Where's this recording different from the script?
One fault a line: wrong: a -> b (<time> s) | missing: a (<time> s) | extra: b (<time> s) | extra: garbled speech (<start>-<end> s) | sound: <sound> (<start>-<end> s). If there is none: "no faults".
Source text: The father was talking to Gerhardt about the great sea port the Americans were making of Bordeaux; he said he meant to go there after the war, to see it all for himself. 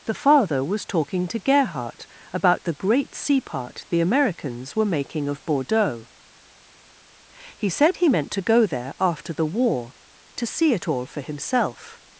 wrong: port -> part (3.4 s)